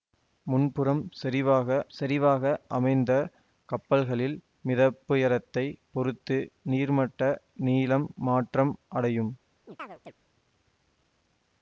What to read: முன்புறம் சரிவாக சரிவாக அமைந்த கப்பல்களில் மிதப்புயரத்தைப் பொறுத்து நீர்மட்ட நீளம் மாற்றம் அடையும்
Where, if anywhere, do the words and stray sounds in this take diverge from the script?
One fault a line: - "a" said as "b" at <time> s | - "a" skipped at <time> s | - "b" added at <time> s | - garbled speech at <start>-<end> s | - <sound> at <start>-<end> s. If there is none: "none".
- chirp at 9.6-10.1 s